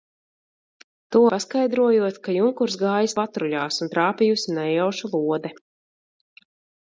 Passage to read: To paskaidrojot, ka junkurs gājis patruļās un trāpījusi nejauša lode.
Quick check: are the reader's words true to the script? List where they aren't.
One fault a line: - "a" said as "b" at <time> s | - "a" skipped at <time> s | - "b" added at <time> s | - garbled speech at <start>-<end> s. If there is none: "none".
none